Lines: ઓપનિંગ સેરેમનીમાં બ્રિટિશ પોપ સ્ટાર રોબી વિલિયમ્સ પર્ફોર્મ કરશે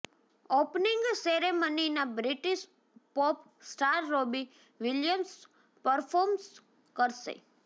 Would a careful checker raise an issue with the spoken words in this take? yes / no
no